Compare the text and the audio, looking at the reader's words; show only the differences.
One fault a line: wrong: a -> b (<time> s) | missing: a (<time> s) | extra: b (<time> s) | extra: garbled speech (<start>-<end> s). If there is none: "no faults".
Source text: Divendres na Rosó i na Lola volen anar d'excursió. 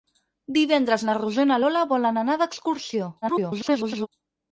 extra: garbled speech (3.2-4.1 s)